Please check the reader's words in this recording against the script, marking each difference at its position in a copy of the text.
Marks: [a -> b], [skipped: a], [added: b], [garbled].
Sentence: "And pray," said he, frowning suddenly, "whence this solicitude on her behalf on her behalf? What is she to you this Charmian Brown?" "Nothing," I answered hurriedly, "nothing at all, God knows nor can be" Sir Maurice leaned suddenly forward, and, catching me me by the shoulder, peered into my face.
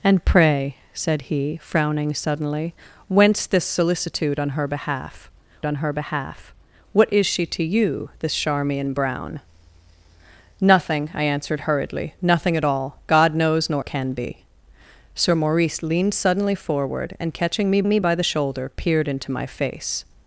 "And pray," said he, frowning suddenly, "whence this solicitude on her behalf on her behalf? What is she to you this Charmian Brown?" "Nothing," I answered hurriedly, "nothing at all, God knows nor can be" Sir Maurice leaned suddenly forward, and, catching me me by the shoulder, peered into my face.